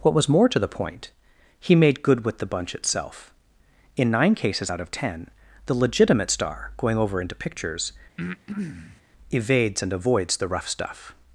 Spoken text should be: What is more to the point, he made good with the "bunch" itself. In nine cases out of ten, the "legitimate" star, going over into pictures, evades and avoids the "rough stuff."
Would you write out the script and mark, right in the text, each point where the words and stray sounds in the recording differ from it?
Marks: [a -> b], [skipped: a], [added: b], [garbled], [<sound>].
What [is -> was] more to the point, he made good with the "bunch" itself. In nine cases out of ten, the "legitimate" star, going over into pictures, [breath] evades and avoids the "rough stuff."